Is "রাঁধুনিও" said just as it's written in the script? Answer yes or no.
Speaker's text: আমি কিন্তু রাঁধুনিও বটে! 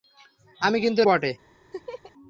no